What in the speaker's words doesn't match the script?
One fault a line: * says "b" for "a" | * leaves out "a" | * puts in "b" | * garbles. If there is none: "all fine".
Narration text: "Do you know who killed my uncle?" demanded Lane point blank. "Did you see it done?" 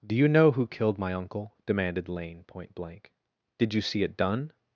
all fine